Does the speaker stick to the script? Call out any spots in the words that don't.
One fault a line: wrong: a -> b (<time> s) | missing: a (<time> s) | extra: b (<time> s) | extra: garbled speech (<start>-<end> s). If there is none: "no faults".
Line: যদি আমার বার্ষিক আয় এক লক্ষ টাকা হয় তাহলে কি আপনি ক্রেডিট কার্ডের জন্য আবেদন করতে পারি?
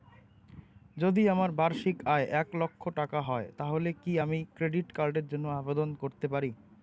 wrong: আপনি -> আমি (4.2 s)